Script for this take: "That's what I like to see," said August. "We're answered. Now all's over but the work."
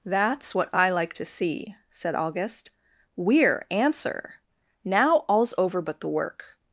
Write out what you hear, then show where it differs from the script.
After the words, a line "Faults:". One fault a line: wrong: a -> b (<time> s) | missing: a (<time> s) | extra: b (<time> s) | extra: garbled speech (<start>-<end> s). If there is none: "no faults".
"That's what I like to see," said August. "We're answer. Now all's over but the work."
Faults:
wrong: answered -> answer (3.7 s)